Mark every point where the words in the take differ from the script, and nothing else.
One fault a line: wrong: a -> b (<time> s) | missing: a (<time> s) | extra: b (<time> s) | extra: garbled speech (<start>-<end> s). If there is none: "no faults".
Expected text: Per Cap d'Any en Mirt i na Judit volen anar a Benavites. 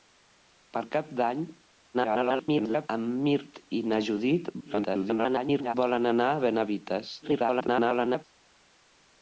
extra: garbled speech (1.9-2.9 s)
extra: garbled speech (4.6-5.7 s)
extra: garbled speech (7.2-8.2 s)